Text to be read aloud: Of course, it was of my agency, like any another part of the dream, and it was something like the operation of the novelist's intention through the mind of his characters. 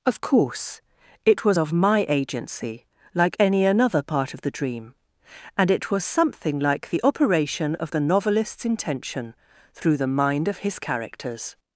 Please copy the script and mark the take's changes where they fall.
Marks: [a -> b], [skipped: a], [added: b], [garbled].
Of course, it was of my agency, like any another part of the dream, and it was something like the operation of the novelist's intention through the mind of his characters.